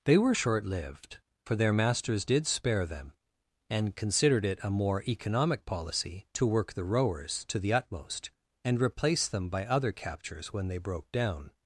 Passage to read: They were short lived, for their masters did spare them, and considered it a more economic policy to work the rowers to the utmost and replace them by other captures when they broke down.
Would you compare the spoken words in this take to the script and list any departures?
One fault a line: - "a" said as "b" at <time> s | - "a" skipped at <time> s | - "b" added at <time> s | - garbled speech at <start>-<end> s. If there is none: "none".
none